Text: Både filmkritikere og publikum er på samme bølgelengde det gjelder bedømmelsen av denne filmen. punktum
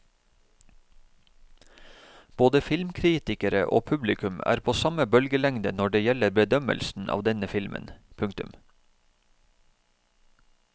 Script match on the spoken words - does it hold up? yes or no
no